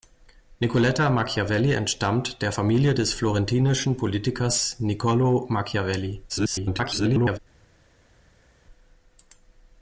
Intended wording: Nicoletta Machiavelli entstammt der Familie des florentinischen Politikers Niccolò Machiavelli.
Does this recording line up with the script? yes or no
no